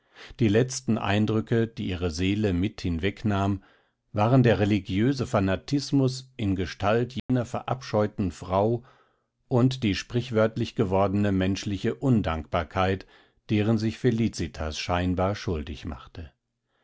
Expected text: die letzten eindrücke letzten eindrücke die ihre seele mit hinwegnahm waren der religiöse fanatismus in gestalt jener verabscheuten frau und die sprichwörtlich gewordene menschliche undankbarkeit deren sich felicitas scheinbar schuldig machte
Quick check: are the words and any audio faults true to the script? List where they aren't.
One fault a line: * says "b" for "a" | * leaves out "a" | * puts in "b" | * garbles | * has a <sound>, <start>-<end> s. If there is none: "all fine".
* leaves out "letzten eindrücke"
* has a dropout, 7.2-7.3 s